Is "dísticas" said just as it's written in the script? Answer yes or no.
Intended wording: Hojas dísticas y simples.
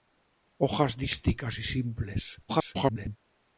yes